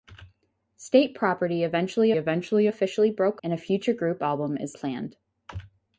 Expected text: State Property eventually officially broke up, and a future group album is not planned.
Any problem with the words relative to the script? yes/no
yes